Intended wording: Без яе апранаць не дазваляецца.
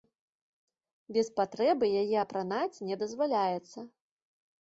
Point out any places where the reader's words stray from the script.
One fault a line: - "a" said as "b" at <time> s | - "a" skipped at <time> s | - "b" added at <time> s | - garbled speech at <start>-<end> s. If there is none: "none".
- "патрэбы" added at 1.4 s